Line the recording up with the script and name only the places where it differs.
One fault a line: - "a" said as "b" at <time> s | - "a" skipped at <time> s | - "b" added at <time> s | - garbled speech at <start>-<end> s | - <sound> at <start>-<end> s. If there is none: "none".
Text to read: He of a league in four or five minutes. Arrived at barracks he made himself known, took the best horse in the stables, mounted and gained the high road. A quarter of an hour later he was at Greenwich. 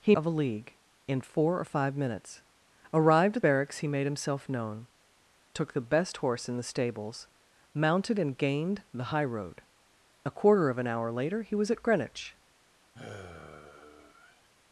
- sigh at 12.9-14.5 s